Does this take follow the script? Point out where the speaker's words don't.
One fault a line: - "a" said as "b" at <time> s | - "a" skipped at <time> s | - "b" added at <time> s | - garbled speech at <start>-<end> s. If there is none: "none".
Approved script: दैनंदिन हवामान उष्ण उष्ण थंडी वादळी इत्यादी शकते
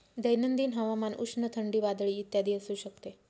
- "उष्ण" skipped at 1.5 s
- "असू" added at 2.5 s